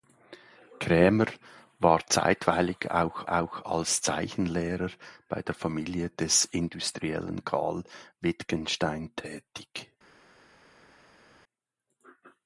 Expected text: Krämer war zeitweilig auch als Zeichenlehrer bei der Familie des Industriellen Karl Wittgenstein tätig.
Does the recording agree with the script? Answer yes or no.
no